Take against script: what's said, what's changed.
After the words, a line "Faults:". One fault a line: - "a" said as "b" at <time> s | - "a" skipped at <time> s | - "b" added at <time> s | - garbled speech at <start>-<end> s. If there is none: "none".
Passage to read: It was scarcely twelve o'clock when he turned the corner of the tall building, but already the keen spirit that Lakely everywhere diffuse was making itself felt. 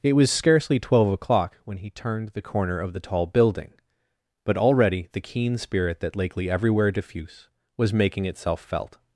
It was scarcely twelve o'clock when he turned the corner of the tall building, but already the keen spirit that Lakely everywhere diffuse was making itself felt.
Faults:
none